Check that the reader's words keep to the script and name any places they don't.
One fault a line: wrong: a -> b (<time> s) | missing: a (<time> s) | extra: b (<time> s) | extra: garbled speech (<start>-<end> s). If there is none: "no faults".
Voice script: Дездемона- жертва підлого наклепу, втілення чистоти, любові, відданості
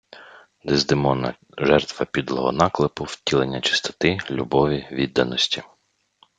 no faults